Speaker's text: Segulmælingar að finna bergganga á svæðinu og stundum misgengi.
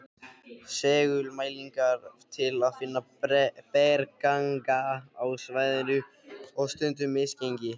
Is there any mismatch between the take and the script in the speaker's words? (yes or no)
yes